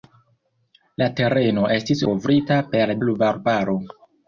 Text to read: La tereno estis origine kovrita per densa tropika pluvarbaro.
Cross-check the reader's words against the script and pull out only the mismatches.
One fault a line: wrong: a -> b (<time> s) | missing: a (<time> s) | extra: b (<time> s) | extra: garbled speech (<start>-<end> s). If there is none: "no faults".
missing: origine (2.0 s)
missing: densa tropika (2.9 s)